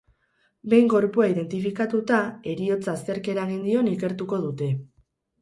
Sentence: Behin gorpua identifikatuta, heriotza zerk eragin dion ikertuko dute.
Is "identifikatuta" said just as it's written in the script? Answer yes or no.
yes